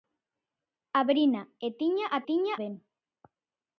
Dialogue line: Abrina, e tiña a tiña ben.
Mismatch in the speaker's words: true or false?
false